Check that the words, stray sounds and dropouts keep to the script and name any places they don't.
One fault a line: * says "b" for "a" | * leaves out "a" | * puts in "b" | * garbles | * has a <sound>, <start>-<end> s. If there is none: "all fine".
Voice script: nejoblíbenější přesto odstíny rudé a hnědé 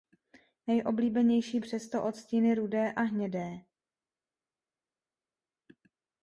all fine